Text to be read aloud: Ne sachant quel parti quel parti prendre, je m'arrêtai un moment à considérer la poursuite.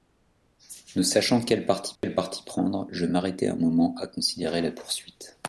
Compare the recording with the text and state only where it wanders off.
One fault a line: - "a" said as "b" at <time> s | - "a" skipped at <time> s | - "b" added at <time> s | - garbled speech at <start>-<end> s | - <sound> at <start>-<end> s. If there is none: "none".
- dropout at 2.0-2.0 s